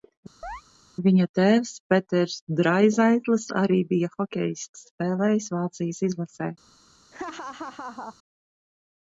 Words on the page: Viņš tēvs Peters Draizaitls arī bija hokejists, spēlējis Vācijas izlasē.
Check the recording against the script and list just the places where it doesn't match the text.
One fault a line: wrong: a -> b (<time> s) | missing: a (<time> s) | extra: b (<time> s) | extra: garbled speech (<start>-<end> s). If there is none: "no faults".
wrong: Viņš -> Viņa (1.1 s)